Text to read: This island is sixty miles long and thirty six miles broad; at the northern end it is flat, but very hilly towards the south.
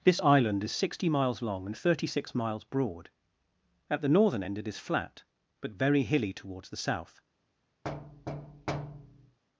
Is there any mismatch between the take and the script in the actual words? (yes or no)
no